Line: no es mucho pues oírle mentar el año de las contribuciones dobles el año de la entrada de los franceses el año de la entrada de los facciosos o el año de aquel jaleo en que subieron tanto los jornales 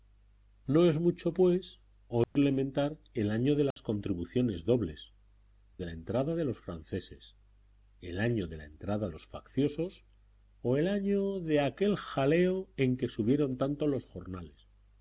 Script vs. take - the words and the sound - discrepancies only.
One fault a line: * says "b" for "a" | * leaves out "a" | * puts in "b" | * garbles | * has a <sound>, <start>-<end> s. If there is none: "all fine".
* has a dropout, 2.2-2.4 s
* has a dropout, 3.7-3.8 s
* leaves out "el año"
* leaves out "de"